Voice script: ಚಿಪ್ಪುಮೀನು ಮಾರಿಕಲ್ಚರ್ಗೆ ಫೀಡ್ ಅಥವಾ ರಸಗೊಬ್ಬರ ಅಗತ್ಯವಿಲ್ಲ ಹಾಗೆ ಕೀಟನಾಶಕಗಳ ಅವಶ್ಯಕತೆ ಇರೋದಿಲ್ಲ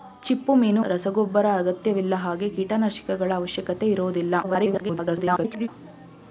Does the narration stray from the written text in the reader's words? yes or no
yes